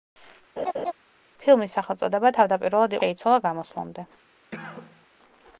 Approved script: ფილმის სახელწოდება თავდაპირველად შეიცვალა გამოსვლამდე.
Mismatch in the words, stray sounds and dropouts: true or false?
true